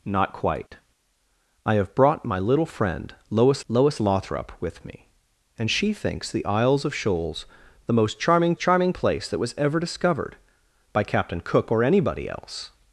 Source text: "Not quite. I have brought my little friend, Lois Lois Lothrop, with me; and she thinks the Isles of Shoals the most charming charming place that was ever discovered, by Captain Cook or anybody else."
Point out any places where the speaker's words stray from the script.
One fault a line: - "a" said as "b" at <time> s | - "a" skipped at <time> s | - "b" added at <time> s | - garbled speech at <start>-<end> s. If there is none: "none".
none